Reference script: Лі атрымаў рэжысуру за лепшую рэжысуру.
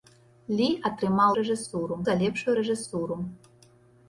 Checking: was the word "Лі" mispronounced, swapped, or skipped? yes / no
no